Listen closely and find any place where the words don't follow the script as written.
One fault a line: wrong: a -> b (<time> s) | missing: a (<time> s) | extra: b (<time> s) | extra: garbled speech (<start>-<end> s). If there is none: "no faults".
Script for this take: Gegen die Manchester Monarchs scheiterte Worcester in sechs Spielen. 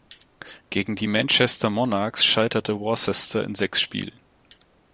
no faults